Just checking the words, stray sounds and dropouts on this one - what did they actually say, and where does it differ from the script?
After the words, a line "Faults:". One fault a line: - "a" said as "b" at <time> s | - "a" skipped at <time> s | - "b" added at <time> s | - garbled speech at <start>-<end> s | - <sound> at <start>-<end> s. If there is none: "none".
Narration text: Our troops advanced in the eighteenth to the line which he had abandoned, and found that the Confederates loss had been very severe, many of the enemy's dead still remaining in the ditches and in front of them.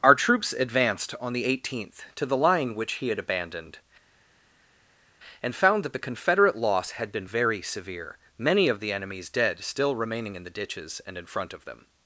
Our troops advanced on the eighteenth to the line which he had abandoned, and found that the Confederate loss had been very severe, many of the enemy's dead still remaining in the ditches and in front of them.
Faults:
- "in" said as "on" at 1.2 s
- "Confederates" said as "Confederate" at 6.0 s